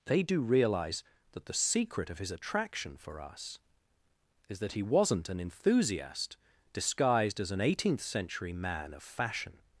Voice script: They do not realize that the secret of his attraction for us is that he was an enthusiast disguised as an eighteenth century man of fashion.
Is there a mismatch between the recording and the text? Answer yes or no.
yes